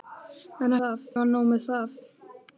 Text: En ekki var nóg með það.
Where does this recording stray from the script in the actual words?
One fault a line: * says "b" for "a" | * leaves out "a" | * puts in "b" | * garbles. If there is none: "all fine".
* says "það" for "ekki"